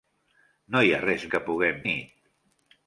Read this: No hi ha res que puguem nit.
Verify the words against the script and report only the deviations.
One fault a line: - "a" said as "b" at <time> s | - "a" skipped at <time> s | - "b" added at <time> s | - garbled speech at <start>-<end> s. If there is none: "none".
none